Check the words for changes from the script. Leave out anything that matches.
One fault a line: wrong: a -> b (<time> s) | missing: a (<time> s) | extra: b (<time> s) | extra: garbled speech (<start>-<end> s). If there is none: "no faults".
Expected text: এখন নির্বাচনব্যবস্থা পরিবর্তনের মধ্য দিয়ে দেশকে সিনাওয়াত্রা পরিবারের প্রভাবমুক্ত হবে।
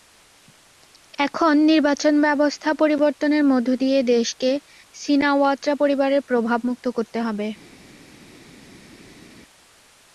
extra: করতে (7.0 s)